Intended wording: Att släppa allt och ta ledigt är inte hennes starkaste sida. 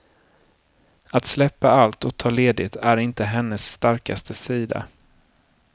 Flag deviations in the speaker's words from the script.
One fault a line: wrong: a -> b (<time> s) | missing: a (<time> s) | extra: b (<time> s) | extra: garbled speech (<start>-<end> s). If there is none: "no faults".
no faults